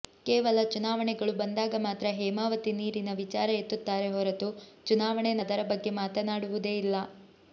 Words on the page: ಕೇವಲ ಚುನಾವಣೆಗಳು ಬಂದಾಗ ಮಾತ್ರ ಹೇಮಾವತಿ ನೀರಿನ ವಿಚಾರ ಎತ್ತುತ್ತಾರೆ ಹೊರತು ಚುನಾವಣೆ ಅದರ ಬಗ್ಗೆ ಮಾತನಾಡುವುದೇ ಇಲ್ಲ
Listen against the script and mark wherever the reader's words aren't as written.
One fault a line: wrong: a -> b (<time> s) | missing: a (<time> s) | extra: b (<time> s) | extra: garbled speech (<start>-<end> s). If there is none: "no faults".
no faults